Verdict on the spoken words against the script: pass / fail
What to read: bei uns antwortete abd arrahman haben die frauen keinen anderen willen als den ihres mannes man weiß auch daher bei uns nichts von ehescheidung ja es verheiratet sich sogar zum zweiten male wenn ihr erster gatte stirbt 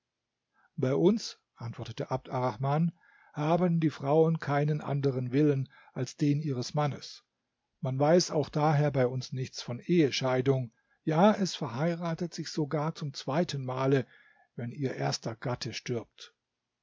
pass